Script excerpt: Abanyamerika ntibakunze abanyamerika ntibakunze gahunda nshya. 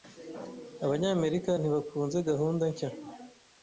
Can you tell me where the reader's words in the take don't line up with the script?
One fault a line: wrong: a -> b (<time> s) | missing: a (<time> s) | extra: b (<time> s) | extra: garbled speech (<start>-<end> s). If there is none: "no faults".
missing: abanyamerika ntibakunze (2.2 s)